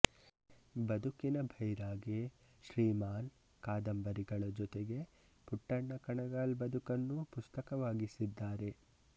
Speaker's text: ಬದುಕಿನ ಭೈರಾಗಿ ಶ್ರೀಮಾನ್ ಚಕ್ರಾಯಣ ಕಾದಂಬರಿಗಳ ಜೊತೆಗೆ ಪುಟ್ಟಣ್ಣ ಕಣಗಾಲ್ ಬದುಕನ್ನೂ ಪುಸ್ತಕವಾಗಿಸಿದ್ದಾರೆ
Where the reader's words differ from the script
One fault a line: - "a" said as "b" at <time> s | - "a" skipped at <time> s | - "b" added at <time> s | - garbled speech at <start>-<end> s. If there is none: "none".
- "ಚಕ್ರಾಯಣ" skipped at 3.3 s